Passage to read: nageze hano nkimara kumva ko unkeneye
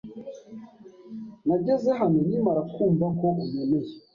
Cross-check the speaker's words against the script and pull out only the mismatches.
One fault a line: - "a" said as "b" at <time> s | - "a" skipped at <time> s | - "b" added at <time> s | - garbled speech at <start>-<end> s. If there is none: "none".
none